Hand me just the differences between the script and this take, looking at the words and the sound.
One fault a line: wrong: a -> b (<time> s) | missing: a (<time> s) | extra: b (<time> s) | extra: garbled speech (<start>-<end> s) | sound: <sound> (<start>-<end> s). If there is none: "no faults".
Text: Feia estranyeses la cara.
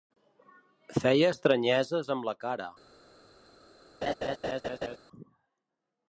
extra: amb (2.2 s)
sound: laugh (4.0-5.0 s)